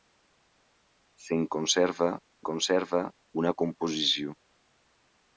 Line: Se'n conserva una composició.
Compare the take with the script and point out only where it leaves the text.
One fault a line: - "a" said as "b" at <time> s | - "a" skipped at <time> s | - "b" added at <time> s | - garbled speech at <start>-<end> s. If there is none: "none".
- "conserva" added at 2.5 s